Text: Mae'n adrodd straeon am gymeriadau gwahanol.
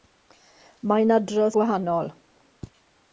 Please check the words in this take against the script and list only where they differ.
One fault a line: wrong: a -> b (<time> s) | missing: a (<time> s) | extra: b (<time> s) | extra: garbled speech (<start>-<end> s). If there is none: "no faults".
missing: straeon am gymeriadau (1.6 s)